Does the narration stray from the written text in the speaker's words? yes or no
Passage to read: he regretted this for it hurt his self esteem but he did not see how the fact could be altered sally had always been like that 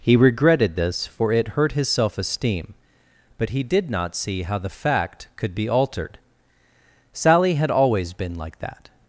no